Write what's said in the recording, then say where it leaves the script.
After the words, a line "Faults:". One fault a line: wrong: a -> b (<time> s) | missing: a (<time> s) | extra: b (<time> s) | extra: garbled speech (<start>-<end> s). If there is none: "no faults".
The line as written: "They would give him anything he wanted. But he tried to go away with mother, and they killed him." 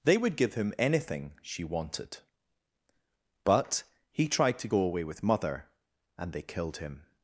"They would give him anything she wanted. But he tried to go away with mother, and they killed him."
Faults:
wrong: he -> she (1.4 s)